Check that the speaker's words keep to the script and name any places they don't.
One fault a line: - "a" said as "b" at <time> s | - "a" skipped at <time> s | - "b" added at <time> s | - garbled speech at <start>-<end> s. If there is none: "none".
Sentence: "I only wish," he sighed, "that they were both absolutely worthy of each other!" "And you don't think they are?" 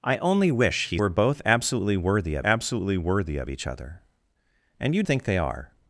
- "sighed that they were both" said as "were both absolutely worthy of" at 1.0 s
- "don't" skipped at 5.0 s